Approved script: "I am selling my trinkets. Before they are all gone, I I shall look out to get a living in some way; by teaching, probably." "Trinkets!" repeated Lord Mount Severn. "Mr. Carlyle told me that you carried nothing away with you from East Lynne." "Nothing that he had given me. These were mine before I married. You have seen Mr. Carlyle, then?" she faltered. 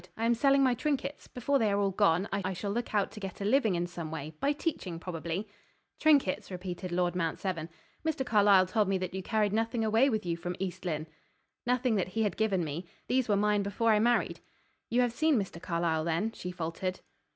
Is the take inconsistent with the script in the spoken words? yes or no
no